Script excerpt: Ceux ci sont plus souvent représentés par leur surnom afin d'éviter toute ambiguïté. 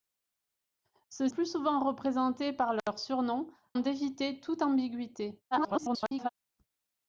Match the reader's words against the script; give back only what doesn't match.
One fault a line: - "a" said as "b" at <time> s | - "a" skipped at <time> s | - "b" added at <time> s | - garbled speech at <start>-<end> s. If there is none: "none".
- "ci sont" skipped at 1.3 s
- "afin" skipped at 3.5 s
- garbled speech at 5.5-6.3 s